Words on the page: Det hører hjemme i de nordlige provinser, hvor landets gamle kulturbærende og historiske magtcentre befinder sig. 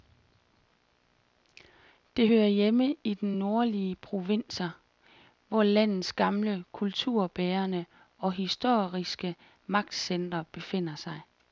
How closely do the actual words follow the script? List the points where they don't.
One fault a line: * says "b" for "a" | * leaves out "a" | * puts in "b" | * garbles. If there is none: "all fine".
all fine